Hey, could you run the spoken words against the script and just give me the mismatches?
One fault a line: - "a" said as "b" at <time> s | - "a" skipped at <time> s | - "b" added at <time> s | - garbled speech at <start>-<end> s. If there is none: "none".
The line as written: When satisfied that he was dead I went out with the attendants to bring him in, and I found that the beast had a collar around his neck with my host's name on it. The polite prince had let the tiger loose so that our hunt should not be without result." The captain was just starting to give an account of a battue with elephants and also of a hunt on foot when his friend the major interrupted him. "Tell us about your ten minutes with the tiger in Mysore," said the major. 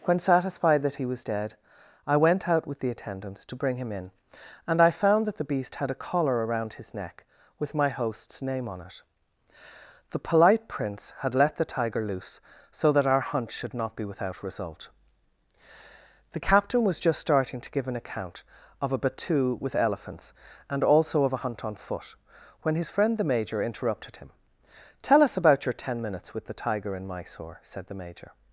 none